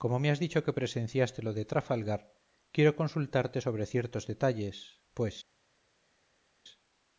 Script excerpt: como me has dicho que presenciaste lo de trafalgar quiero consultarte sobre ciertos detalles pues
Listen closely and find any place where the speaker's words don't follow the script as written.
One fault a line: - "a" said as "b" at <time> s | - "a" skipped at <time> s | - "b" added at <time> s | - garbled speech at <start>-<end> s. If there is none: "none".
none